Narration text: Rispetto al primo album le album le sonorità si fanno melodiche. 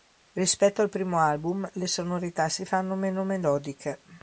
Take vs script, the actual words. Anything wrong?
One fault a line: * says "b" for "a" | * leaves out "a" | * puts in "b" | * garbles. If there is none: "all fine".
* leaves out "album le"
* puts in "meno"